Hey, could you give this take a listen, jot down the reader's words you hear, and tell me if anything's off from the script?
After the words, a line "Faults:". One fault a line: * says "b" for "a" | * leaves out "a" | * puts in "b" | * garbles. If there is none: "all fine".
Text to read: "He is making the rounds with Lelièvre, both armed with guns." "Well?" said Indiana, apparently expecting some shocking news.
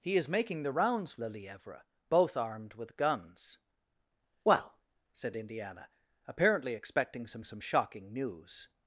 "He is making the rounds Lelièvre, both armed with guns." "Well?" said Indiana, apparently expecting some some shocking news.
Faults:
* leaves out "with"
* puts in "some"